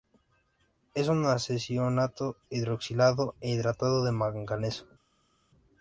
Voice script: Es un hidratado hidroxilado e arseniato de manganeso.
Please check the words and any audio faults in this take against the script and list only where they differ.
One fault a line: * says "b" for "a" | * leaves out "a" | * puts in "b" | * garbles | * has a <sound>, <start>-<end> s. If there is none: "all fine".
* says "arseniato" for "hidratado"
* says "hidratado" for "arseniato"